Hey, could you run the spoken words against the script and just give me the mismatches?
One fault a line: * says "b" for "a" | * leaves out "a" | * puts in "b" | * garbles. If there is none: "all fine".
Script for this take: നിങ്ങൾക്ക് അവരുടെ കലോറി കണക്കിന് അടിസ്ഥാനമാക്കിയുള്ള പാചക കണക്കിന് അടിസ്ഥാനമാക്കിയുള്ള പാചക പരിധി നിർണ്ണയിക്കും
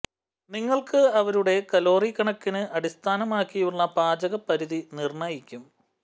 * leaves out "കണക്കിന് അടിസ്ഥാനമാക്കിയുള്ള പാചക"